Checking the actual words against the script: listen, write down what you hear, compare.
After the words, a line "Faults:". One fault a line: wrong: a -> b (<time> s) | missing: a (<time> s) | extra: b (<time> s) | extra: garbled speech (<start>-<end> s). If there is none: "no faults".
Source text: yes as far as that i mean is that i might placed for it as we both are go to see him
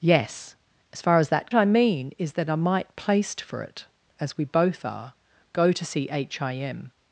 yes as far as that i mean is that i might placed for it as we both are go to see him
Faults:
no faults